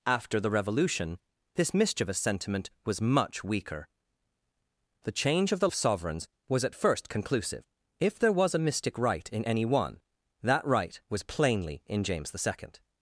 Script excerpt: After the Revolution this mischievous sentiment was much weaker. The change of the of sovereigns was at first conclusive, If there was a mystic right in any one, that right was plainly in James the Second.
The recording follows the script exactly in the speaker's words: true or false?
true